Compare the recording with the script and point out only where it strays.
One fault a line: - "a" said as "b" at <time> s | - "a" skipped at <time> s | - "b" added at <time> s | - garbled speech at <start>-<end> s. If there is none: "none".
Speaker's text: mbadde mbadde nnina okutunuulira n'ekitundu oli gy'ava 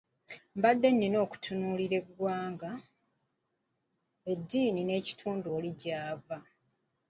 - "mbadde" skipped at 0.9 s
- "eggwanga eddiini" added at 2.0 s